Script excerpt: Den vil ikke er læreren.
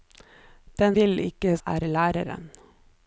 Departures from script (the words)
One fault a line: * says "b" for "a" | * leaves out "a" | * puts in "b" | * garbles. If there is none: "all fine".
all fine